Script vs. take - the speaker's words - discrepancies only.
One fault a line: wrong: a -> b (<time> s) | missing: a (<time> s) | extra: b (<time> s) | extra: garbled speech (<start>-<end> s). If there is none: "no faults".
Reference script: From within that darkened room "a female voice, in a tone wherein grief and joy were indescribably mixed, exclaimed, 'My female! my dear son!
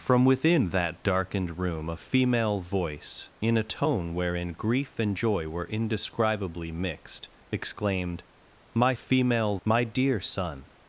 no faults